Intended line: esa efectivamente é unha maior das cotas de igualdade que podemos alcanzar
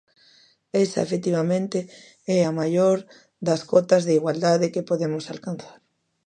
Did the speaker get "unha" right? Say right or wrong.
wrong